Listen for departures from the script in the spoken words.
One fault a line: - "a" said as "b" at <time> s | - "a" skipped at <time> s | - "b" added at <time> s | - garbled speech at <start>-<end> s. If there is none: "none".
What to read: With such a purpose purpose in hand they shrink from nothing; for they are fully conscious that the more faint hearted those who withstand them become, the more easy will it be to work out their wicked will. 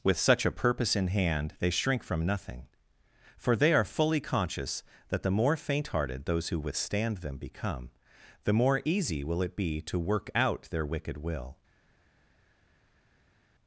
- "purpose" skipped at 0.9 s